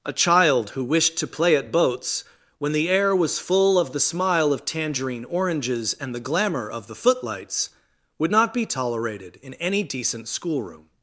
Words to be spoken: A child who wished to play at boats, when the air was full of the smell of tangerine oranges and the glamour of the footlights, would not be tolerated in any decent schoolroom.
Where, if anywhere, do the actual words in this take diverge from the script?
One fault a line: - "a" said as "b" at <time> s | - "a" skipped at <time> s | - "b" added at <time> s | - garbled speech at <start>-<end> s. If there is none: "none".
- "smell" said as "smile" at 4.0 s